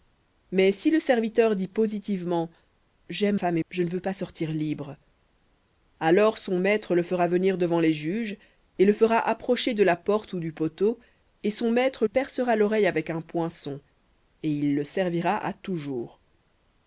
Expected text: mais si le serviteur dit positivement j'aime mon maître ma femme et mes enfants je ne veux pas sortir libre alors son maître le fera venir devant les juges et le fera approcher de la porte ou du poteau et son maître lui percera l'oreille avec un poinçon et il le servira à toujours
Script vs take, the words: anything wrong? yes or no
yes